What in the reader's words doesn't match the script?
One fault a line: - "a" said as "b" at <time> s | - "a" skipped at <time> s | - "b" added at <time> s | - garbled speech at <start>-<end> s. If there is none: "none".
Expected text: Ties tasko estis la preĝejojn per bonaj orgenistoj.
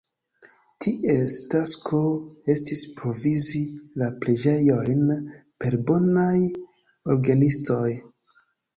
- "provizi" added at 3.0 s